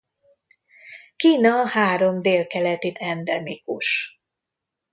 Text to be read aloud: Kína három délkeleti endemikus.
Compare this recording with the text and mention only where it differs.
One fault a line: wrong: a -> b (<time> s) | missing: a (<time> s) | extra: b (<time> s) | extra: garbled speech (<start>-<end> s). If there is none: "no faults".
no faults